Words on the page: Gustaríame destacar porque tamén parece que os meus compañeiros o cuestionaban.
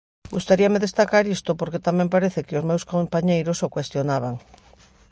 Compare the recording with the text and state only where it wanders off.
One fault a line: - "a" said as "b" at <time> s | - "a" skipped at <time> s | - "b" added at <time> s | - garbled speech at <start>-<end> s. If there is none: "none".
- "isto" added at 1.4 s